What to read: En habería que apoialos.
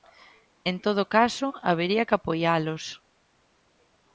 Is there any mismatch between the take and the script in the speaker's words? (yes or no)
yes